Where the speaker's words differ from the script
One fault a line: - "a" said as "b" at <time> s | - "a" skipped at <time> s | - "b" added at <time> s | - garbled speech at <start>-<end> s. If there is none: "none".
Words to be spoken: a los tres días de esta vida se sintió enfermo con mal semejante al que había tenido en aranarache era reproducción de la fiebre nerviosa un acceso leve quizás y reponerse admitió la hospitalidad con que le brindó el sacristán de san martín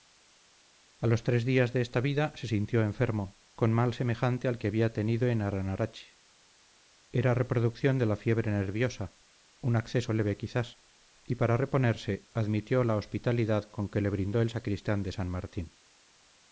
- "para" added at 11.3 s